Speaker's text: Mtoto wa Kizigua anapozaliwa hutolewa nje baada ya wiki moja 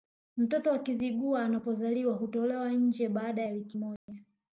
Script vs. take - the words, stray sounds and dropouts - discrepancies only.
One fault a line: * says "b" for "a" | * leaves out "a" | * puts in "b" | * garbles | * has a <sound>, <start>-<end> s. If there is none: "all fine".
* has a dropout, 4.0-4.1 s